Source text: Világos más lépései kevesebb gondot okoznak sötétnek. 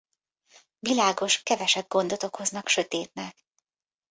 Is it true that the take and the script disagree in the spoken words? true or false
true